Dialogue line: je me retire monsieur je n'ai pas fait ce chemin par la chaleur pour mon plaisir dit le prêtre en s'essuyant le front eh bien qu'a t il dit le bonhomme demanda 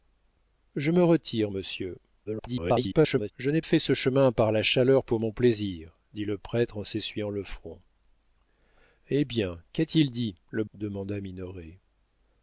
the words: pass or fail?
fail